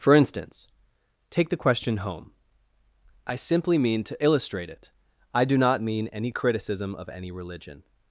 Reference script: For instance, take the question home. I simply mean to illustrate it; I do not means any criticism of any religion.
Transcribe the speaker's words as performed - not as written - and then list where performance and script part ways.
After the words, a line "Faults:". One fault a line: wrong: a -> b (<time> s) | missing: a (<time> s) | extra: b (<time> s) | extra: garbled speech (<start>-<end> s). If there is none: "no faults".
For instance, take the question home. I simply mean to illustrate it; I do not mean any criticism of any religion.
Faults:
wrong: means -> mean (5.9 s)